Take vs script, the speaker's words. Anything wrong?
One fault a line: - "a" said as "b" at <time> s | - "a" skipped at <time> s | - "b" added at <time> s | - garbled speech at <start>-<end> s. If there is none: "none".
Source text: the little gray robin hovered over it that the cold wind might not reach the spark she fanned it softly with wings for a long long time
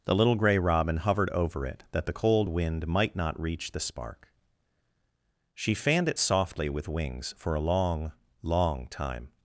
none